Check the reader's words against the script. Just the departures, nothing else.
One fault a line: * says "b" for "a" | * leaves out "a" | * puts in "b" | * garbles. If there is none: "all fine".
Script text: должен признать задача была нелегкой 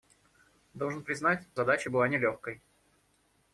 all fine